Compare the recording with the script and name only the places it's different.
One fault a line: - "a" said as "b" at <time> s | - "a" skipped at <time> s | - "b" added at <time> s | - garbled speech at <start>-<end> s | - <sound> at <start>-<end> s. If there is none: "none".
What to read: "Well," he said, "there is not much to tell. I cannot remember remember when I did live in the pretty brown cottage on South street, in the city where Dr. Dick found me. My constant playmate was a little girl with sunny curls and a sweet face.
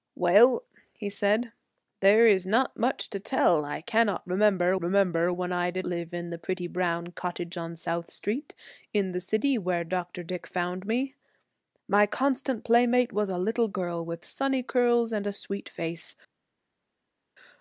none